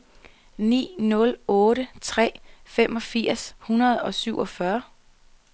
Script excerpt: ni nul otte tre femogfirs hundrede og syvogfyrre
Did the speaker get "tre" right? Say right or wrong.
right